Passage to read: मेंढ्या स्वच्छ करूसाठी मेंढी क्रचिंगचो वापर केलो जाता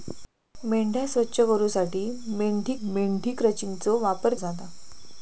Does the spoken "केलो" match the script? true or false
false